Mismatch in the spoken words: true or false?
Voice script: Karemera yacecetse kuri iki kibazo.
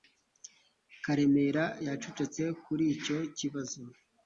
true